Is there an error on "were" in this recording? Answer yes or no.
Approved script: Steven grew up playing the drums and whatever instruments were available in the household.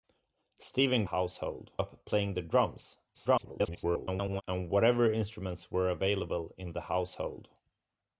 no